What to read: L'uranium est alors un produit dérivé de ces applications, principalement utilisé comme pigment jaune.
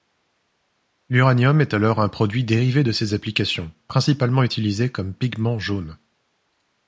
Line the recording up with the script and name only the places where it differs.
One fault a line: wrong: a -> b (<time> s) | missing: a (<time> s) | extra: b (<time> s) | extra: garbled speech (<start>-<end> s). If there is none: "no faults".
no faults